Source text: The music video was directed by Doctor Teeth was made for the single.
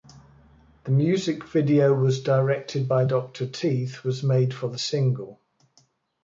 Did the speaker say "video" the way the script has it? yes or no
yes